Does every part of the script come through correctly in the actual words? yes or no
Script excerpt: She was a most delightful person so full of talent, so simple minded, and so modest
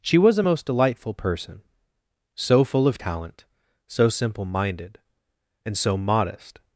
yes